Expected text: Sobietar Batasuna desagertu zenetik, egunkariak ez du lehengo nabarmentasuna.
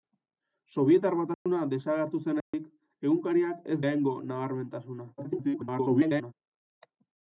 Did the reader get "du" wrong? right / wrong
wrong